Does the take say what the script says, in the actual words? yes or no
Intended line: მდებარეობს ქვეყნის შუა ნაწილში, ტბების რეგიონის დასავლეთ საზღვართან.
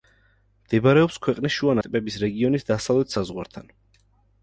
no